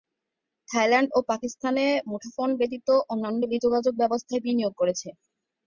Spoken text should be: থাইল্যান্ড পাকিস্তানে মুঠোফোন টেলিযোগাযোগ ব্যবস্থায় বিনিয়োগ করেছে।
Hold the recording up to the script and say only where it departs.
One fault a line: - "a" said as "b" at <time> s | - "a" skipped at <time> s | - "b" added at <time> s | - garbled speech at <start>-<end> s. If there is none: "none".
- "ও" added at 1.1 s
- "ব্যতীত অন্যান্য" added at 2.6 s